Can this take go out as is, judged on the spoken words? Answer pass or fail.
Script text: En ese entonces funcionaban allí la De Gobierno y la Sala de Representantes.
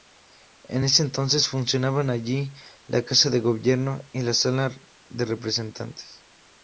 fail